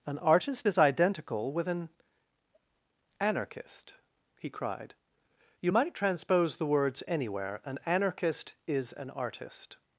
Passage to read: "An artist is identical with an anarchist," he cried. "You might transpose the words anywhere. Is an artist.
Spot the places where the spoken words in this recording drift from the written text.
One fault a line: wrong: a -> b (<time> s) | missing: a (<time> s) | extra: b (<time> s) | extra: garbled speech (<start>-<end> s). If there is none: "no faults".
extra: An anarchist (7.6 s)